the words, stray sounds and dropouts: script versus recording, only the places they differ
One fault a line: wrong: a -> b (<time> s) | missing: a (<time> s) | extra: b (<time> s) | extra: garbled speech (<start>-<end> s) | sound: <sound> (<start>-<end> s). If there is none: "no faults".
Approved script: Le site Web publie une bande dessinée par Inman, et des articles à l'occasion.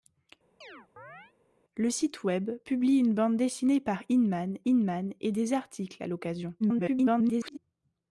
sound: chirp (0.6-1.3 s)
extra: Inman (4.7 s)
extra: garbled speech (6.6-7.6 s)